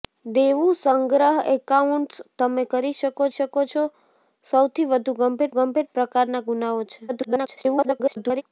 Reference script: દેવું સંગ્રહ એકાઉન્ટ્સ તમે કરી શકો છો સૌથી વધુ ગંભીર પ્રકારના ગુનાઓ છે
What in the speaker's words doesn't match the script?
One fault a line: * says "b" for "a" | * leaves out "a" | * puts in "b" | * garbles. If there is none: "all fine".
* puts in "શકો"
* puts in "ગંભીર"
* garbles